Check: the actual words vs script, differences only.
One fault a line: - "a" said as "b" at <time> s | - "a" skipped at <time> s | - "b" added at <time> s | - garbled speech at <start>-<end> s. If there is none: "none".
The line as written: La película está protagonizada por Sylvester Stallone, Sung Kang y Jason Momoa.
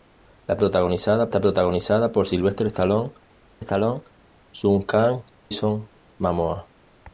- "película" said as "protagonizada" at 0.6 s
- "Stallone" added at 3.6 s
- "y" skipped at 5.2 s